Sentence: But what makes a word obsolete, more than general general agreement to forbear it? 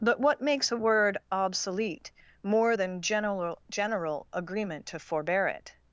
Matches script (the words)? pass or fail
pass